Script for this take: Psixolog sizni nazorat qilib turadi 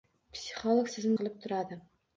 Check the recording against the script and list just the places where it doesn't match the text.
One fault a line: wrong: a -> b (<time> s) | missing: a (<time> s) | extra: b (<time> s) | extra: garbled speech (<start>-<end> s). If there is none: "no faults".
missing: nazorat (1.1 s)